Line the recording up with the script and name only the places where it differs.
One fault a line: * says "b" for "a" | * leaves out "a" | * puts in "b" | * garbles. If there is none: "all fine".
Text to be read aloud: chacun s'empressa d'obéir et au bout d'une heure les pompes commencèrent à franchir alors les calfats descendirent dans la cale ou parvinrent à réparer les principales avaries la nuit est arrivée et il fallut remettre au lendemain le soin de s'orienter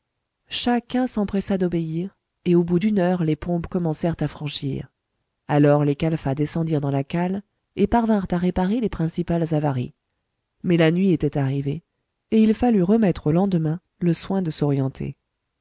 * says "et" for "ou"
* puts in "mais"
* says "était" for "est"